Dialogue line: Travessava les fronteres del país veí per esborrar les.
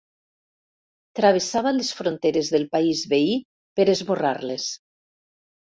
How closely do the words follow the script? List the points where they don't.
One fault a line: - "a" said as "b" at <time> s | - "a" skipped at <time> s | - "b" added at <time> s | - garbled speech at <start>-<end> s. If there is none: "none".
none